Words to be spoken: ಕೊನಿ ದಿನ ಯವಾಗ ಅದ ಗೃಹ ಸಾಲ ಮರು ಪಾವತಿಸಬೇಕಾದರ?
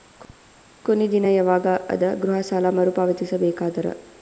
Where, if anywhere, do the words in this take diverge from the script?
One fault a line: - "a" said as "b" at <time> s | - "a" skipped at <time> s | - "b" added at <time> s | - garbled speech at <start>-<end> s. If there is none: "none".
none